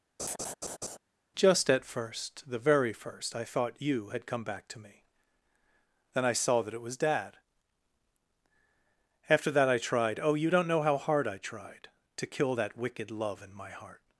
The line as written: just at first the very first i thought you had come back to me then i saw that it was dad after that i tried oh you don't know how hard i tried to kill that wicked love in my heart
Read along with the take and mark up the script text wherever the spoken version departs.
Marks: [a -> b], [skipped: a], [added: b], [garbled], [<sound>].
[laugh] just at first the very first i thought you had come back to me then i saw that it was dad after that i tried oh you don't know how hard i tried to kill that wicked love in my heart